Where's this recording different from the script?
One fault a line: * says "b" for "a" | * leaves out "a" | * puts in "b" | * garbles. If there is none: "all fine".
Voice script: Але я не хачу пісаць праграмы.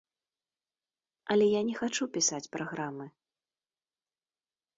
all fine